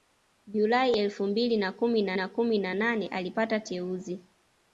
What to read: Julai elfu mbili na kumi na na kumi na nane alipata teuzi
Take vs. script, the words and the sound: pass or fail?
pass